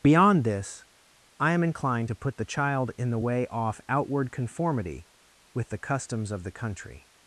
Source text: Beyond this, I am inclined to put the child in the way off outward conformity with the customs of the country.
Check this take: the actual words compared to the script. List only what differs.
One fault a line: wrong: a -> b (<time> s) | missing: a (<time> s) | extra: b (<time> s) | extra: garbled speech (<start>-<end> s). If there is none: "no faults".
no faults